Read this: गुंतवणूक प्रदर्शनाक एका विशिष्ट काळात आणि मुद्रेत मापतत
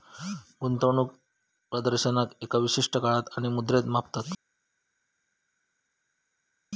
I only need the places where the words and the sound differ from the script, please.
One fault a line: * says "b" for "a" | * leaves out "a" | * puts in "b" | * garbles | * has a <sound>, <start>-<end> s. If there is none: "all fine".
all fine